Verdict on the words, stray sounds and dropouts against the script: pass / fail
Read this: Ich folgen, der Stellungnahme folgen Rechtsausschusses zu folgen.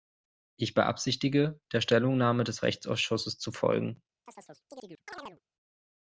fail